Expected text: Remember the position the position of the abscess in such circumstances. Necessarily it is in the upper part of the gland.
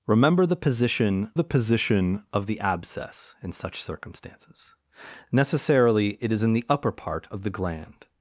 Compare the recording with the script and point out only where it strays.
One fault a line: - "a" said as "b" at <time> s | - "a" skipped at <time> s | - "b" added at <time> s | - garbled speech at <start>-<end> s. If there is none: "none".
none